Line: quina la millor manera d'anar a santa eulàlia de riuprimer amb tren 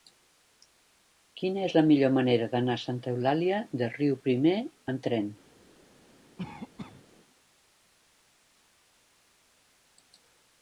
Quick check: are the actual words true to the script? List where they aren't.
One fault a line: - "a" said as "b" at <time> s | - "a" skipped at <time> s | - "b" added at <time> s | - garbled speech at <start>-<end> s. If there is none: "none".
- "és" added at 1.6 s